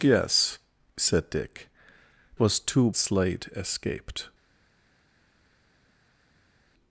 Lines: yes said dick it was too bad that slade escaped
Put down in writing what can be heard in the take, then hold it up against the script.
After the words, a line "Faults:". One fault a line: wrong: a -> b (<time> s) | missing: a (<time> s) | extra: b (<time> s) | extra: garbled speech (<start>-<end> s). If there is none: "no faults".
yes said dick was too slade escaped
Faults:
missing: it (1.7 s)
missing: bad that (2.9 s)